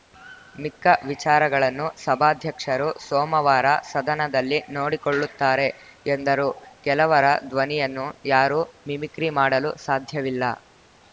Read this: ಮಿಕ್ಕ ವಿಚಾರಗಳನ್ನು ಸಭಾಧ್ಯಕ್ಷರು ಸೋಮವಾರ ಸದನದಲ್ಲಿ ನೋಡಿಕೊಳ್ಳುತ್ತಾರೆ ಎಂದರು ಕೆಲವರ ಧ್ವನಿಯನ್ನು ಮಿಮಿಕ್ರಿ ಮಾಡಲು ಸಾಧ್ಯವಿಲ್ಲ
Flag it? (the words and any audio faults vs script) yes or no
yes